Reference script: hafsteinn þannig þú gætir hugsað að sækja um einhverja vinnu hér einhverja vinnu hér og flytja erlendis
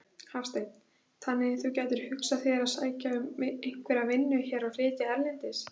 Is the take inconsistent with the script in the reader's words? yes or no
yes